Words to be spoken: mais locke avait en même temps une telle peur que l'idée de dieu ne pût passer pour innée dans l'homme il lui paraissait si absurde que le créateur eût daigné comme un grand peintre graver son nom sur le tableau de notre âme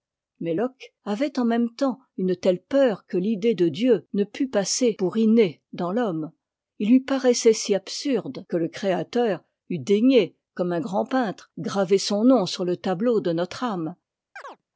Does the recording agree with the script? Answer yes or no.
yes